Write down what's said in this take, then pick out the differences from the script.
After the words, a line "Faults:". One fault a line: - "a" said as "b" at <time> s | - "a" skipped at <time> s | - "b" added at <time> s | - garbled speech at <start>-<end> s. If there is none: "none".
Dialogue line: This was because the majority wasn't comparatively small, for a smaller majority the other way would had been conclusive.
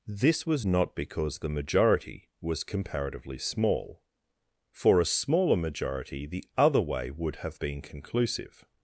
This was not because the majority was comparatively small, for a smaller majority the other way would have been conclusive.
Faults:
- "not" added at 0.6 s
- "wasn't" said as "was" at 2.4 s
- "had" said as "have" at 7.4 s